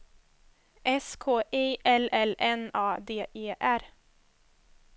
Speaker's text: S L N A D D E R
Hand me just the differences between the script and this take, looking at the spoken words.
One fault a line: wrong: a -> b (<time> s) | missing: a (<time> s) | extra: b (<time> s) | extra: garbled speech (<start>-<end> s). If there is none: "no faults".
extra: K I (1.1 s)
extra: L (2.1 s)
missing: D (3.3 s)